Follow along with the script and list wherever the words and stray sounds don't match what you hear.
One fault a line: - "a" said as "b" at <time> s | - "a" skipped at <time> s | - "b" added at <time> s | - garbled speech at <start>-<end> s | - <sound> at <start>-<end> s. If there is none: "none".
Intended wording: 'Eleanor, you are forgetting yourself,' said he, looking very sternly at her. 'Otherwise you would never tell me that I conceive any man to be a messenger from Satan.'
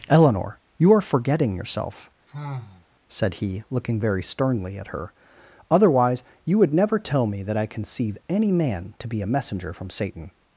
- sigh at 2.3-2.9 s